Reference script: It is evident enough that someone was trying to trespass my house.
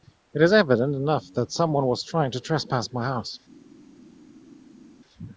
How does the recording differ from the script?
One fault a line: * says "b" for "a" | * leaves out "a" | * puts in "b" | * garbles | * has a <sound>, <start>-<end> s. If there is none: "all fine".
all fine